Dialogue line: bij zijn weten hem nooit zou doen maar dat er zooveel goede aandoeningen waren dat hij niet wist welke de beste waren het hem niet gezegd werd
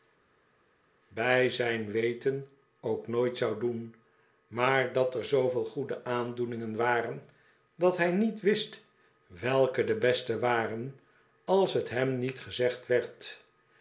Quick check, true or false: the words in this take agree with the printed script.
false